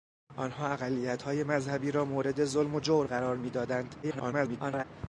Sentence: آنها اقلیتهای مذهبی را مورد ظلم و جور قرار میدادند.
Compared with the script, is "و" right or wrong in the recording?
right